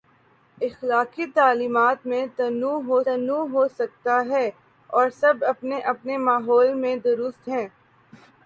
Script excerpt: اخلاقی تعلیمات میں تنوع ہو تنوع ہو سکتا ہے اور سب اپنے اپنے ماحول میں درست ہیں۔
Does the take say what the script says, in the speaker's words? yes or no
yes